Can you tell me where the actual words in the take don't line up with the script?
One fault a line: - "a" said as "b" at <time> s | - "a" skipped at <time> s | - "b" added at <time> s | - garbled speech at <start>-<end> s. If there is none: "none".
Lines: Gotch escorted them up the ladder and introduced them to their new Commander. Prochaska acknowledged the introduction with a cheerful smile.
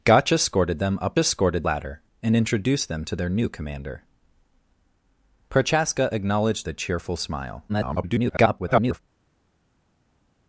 - "the" said as "escorted" at 1.2 s
- "the introduction with" skipped at 6.7 s
- garbled speech at 7.7-9.0 s